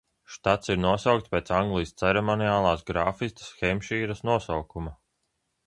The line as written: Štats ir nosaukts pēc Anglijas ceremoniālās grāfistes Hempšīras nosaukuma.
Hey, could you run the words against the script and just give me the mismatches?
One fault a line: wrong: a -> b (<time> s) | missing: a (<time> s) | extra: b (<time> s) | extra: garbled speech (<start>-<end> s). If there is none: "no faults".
no faults